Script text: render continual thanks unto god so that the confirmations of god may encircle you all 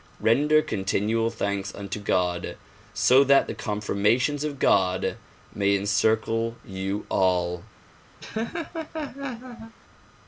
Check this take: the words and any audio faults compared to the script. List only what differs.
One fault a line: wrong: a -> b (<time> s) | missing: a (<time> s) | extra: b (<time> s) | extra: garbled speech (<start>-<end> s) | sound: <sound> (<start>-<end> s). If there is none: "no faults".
sound: laugh (8.2-9.7 s)